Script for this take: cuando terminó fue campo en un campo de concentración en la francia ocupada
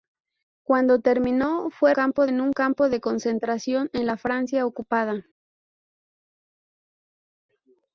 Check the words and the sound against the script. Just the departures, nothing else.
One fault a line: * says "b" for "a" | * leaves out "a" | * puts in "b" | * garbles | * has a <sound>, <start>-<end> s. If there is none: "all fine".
all fine